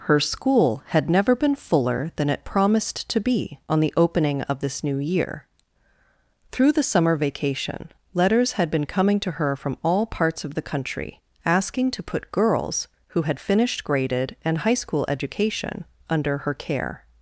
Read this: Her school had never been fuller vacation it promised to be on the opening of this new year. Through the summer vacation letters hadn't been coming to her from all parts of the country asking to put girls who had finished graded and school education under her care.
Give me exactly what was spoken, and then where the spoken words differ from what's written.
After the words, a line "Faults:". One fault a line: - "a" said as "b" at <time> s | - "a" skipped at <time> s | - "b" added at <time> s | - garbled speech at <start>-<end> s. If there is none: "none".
Her school had never been fuller than it promised to be on the opening of this new year. Through the summer vacation letters had been coming to her from all parts of the country asking to put girls who had finished graded and high school education under her care.
Faults:
- "vacation" said as "than" at 2.1 s
- "hadn't" said as "had" at 8.5 s
- "high" added at 14.6 s